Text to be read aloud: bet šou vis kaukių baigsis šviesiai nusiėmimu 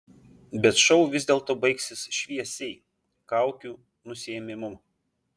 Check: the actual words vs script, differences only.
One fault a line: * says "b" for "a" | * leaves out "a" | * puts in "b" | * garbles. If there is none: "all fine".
* says "dėlto" for "kaukių"
* puts in "kaukių"